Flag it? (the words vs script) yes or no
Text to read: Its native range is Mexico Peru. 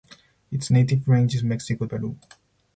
no